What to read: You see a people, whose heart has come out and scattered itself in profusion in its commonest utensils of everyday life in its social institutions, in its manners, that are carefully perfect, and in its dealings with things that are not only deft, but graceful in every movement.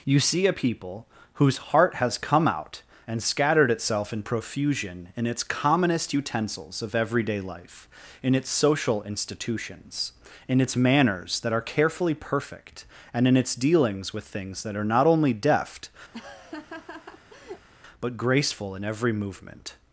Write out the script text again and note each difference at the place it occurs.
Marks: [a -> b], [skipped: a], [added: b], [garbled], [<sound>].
You see a people, whose heart has come out and scattered itself in profusion in its commonest utensils of everyday life in its social institutions, in its manners, that are carefully perfect, and in its dealings with things that are not only deft, [laugh] but graceful in every movement.